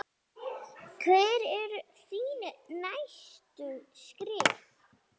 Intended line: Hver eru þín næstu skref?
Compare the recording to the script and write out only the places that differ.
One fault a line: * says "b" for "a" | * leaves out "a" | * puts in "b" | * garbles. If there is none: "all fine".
all fine